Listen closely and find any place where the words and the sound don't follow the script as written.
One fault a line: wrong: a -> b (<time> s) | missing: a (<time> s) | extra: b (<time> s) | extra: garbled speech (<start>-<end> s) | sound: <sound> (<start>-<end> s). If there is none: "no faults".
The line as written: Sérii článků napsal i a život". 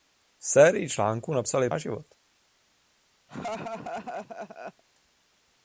sound: laugh (3.3-4.8 s)